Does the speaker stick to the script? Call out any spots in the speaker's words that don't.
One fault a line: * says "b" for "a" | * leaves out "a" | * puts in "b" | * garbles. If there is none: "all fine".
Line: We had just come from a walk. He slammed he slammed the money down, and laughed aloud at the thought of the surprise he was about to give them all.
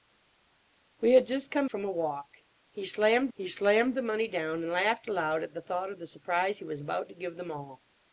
all fine